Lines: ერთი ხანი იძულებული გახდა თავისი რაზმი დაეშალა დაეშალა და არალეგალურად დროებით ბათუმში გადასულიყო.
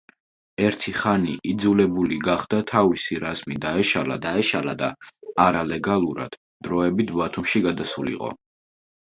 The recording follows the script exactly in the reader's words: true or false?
true